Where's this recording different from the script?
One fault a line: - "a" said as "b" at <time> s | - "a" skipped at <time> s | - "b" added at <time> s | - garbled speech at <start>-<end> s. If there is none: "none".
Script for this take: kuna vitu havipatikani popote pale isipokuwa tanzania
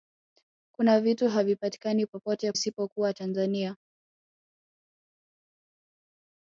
- "pale" skipped at 2.5 s